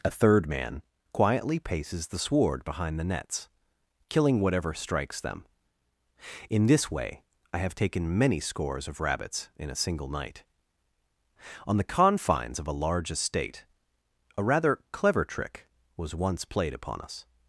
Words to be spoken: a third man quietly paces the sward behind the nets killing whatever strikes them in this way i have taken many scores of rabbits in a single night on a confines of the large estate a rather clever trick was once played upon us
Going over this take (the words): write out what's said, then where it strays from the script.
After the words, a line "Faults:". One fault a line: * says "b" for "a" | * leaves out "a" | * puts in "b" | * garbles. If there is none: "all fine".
a third man quietly paces the sward behind the nets killing whatever strikes them in this way i have taken many scores of rabbits in a single night on the confines of a large estate a rather clever trick was once played upon us
Faults:
* says "the" for "a"
* says "a" for "the"